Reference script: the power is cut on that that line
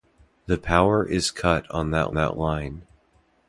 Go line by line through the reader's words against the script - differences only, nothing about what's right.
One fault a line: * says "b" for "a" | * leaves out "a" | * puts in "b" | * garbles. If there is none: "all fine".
all fine